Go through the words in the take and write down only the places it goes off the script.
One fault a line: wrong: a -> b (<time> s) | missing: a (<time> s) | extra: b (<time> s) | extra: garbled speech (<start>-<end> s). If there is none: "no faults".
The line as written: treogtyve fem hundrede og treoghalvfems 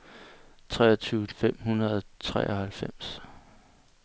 no faults